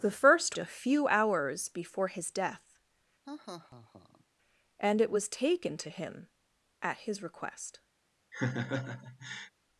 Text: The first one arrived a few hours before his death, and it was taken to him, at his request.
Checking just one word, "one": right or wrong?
wrong